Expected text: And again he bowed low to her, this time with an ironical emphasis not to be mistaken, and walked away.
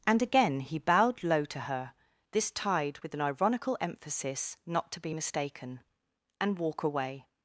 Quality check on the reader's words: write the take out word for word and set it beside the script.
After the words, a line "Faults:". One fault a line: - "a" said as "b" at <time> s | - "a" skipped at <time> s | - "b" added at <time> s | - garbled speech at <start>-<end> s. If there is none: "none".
And again he bowed low to her, this tide with an ironical emphasis not to be mistaken, and walk away.
Faults:
- "time" said as "tide" at 2.5 s
- "walked" said as "walk" at 6.6 s